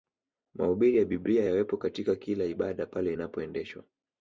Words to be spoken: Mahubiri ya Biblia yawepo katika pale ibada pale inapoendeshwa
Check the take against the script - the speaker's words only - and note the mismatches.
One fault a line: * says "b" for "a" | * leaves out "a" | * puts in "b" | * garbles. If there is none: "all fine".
* says "kila" for "pale"